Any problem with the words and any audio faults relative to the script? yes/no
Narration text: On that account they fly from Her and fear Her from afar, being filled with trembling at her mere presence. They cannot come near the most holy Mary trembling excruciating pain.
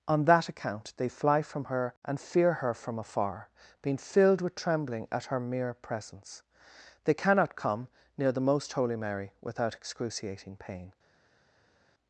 yes